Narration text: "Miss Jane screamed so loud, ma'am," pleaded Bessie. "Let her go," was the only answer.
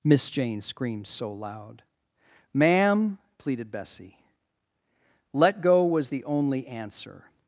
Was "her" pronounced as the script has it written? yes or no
no